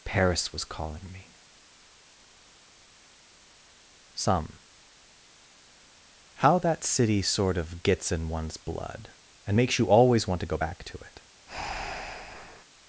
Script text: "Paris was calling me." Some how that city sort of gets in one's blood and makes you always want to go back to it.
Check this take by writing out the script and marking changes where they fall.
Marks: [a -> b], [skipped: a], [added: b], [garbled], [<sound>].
"Paris was calling me." Some how that city sort of gets in one's blood and makes you always want to go back to it. [breath]